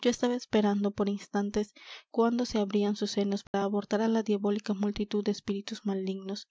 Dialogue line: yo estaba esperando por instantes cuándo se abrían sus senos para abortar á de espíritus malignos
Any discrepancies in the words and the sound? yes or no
yes